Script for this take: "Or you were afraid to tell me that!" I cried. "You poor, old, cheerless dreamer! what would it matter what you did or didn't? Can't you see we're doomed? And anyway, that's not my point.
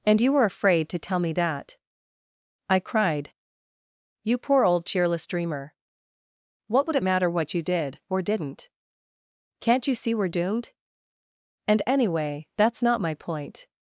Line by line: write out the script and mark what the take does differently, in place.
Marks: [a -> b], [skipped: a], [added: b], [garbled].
["Or -> And] you were afraid to tell me that!" I cried. "You poor, old, cheerless dreamer! what would it matter what you did or didn't? Can't you see we're doomed? And anyway, that's not my point.